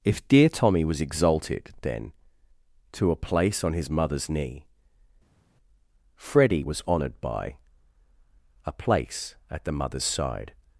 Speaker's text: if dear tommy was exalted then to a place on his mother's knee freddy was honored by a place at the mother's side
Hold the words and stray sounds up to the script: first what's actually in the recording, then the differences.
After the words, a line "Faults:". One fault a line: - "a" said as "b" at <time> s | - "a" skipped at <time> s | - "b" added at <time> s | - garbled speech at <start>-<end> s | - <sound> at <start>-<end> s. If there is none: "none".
if dear tommy was exalted then to a place on his mother's knee freddy was honored by a place at the mother's side
Faults:
none